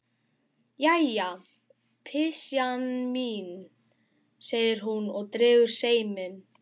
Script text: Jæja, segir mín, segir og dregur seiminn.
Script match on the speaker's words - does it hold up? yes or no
no